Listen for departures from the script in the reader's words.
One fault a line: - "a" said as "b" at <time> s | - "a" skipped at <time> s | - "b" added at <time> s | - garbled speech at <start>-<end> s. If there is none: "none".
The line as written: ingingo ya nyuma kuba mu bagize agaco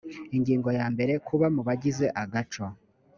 - "nyuma" said as "mbere" at 0.9 s